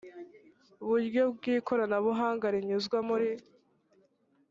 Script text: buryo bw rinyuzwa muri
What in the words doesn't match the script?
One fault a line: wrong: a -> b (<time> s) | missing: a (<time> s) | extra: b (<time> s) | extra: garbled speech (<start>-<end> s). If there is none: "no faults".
extra: ikoranabuhanga (1.6 s)